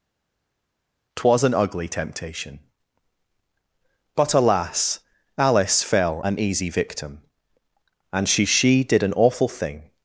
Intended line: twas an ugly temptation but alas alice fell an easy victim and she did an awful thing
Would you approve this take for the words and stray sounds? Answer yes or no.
no